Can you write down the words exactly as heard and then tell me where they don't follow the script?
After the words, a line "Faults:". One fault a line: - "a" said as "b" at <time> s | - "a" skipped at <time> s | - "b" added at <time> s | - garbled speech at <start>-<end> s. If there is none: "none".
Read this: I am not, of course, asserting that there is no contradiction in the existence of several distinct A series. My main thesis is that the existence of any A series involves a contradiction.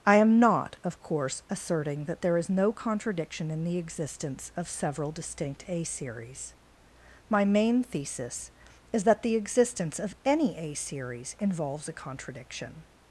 I am not, of course, asserting that there is no contradiction in the existence of several distinct A series. My main thesis is that the existence of any A series involves a contradiction.
Faults:
none